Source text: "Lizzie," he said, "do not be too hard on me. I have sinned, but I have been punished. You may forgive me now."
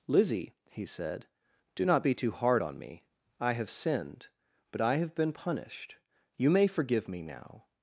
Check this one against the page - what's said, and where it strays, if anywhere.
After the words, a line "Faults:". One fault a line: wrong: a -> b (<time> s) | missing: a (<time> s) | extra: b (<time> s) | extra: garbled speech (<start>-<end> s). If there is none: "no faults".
"Lizzie," he said, "do not be too hard on me. I have sinned, but I have been punished. You may forgive me now."
Faults:
no faults